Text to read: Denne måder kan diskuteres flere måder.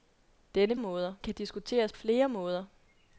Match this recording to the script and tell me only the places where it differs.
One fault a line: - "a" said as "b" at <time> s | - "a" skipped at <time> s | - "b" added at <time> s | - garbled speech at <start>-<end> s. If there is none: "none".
none